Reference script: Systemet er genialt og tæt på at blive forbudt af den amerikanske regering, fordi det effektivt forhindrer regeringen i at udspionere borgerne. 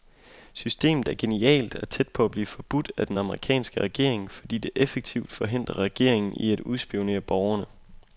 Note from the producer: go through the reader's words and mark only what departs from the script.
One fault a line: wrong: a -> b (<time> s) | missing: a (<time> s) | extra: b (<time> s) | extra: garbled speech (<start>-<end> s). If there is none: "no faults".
no faults